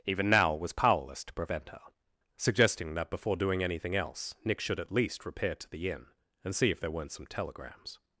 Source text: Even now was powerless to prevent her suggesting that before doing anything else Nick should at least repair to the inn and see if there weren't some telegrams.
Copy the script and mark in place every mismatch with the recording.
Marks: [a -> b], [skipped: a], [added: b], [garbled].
Even now was powerless to prevent her suggesting that before doing anything else Nick should at least repair to the inn and see if there weren't some telegrams.